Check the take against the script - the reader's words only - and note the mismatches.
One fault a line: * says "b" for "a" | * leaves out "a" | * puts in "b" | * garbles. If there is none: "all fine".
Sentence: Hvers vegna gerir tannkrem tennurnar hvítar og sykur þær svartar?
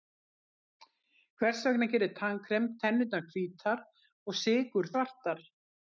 * leaves out "þær"